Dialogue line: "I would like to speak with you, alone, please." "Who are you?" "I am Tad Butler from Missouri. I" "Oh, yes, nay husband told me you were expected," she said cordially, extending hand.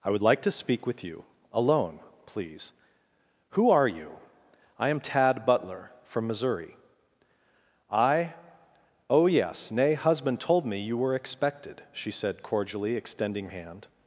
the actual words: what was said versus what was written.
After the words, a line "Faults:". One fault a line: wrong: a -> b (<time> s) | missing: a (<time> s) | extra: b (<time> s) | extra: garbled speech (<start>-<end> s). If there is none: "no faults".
"I would like to speak with you, alone, please." "Who are you?" "I am Tad Butler from Missouri. I" "Oh, yes, nay husband told me you were expected," she said cordially, extending hand.
Faults:
no faults